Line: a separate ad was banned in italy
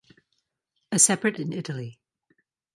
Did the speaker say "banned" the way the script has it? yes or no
no